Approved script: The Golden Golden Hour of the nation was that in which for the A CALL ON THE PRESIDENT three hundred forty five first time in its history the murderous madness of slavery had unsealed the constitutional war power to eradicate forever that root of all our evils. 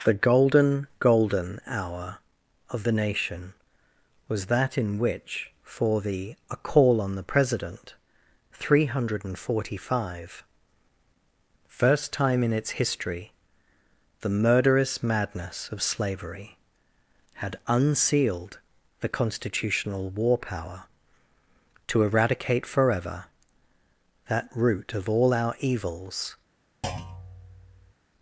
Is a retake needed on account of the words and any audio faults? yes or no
yes